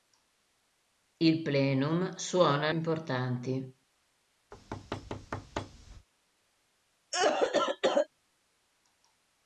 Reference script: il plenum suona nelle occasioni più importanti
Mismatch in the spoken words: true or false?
true